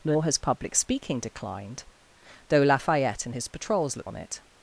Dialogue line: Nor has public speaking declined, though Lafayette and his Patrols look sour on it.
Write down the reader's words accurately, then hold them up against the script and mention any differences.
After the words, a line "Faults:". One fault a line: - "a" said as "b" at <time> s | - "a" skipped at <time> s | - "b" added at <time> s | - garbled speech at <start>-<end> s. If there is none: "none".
Nor has public speaking declined, though Lafayette and his Patrols look on it.
Faults:
- "sour" skipped at 4.1 s